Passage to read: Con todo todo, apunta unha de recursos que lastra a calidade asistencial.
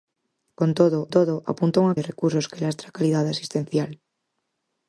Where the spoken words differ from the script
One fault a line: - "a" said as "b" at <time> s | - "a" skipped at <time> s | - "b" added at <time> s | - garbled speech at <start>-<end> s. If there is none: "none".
none